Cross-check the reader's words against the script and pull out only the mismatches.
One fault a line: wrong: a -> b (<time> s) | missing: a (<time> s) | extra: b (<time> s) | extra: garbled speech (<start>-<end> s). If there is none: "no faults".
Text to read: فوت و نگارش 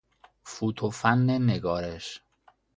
extra: فن (0.9 s)